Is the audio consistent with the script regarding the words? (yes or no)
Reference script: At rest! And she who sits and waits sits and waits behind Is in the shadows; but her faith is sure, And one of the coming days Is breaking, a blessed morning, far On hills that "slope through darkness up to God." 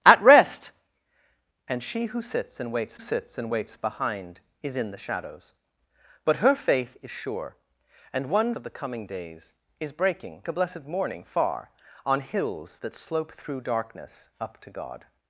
yes